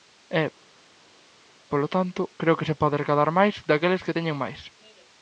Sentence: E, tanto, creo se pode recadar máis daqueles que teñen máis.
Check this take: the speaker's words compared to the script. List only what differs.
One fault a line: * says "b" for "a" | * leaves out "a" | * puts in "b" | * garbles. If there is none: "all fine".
* puts in "polo"
* puts in "que"